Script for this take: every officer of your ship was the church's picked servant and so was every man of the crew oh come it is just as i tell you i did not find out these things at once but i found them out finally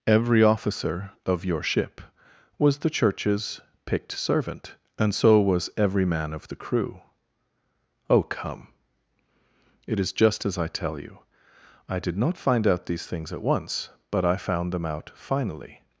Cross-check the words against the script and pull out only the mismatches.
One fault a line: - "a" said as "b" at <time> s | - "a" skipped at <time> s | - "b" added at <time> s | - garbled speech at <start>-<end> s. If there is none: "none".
none